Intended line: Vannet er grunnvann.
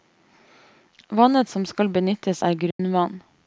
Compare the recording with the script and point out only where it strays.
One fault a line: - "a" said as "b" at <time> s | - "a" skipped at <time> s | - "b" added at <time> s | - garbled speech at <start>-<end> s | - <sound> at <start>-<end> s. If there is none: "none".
- "som skal benyttes" added at 1.5 s
- dropout at 2.7-2.8 s